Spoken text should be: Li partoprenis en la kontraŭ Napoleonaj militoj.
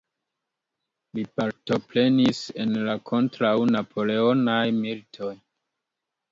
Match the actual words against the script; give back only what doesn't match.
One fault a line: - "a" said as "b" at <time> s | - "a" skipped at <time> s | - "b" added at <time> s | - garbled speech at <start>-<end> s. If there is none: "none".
none